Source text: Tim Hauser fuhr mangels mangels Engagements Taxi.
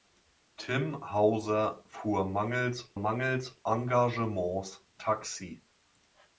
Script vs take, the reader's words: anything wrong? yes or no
no